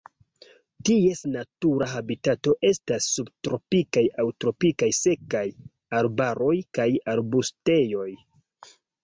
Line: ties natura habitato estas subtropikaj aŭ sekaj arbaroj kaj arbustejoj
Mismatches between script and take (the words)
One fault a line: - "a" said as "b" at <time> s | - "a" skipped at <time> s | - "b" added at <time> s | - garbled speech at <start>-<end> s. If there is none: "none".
- "tropikaj" added at 4.5 s